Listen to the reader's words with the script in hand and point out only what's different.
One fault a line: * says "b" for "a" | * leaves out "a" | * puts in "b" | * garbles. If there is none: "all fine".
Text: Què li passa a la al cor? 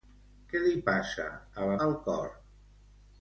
all fine